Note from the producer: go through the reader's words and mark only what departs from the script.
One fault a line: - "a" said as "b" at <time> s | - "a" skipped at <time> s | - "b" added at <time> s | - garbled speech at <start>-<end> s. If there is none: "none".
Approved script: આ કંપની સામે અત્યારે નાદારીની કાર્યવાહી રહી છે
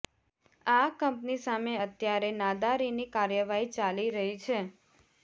- "ચાલી" added at 3.8 s